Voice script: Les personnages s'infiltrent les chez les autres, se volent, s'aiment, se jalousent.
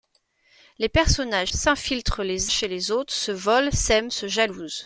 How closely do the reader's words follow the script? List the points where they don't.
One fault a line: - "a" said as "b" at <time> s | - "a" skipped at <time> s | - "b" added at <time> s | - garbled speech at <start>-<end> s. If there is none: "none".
none